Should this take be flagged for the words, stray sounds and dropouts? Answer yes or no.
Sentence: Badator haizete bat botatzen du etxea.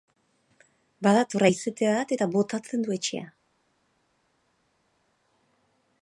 yes